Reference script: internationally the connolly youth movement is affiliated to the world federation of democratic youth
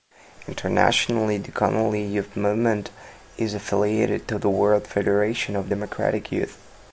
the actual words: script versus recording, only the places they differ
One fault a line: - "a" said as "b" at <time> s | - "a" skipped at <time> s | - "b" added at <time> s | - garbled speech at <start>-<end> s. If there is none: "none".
none